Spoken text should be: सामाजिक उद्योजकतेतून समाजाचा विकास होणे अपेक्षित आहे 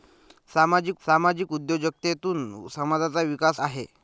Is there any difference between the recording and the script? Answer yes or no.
yes